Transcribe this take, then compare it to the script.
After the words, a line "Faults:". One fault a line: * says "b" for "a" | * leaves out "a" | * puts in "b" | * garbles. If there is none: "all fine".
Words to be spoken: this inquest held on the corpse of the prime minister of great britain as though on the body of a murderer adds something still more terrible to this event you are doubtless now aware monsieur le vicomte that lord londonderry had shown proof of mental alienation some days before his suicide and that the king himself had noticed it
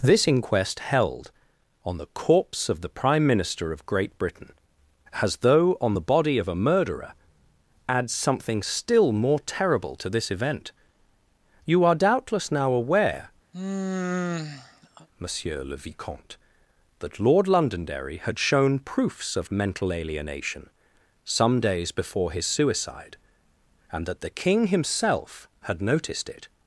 this inquest held on the corpse of the prime minister of great britain as though on the body of a murderer adds something still more terrible to this event you are doubtless now aware monsieur le vicomte that lord londonderry had shown proofs of mental alienation some days before his suicide and that the king himself had noticed it
Faults:
* says "proofs" for "proof"